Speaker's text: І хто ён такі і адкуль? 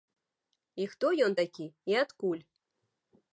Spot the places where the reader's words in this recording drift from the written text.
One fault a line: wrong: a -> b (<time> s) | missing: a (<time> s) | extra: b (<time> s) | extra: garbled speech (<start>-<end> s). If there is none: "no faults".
no faults